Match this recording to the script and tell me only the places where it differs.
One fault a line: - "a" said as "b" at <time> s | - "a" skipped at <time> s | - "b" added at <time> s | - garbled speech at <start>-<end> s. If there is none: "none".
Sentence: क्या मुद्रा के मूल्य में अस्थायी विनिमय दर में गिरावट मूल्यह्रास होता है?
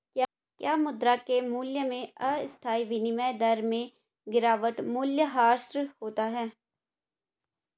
none